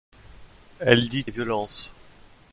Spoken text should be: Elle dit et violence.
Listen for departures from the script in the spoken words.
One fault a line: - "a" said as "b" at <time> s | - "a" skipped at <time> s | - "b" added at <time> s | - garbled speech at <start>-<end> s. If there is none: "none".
none